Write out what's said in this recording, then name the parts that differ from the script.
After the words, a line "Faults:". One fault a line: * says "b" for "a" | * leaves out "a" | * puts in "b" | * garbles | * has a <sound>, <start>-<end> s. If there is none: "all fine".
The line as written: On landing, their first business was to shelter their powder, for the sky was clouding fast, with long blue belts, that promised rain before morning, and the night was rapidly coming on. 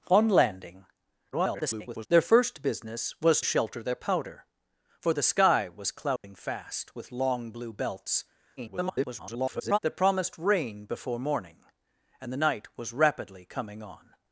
On landing, [garbled] their first business was shelter their powder, for the sky was clouding fast, with long blue belts, [garbled] that promised rain before morning, and the night was rapidly coming on.
Faults:
* garbles
* leaves out "to"
* has a dropout, 6.2-6.2 s
* garbles